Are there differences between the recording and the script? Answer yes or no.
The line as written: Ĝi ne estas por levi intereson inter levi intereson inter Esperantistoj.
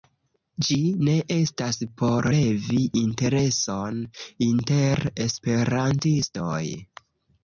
yes